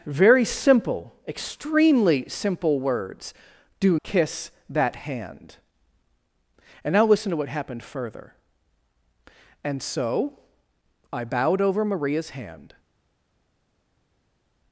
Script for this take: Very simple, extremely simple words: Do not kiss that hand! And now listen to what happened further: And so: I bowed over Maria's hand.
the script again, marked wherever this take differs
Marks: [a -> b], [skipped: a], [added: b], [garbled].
Very simple, extremely simple words: Do [skipped: not] kiss that hand! And now listen to what happened further: And so: I bowed over Maria's hand.